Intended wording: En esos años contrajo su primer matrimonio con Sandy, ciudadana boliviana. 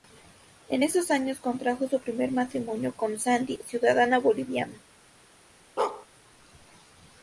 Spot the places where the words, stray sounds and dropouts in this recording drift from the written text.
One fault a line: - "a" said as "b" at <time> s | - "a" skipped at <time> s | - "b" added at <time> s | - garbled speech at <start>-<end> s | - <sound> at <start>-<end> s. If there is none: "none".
- bark at 5.8-6.1 s